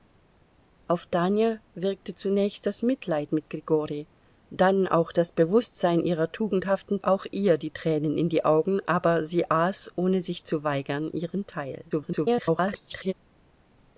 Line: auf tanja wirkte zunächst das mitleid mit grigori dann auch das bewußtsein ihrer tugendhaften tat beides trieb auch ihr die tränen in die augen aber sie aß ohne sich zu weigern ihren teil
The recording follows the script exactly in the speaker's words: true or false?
false